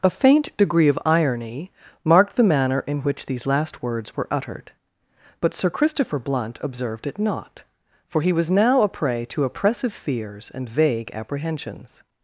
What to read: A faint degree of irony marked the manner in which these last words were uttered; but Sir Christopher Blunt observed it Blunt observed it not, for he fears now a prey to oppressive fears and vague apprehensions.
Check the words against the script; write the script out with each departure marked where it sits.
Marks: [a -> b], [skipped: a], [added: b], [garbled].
A faint degree of irony marked the manner in which these last words were uttered; but Sir Christopher Blunt observed it [skipped: Blunt observed it] not, for he [fears -> was] now a prey to oppressive fears and vague apprehensions.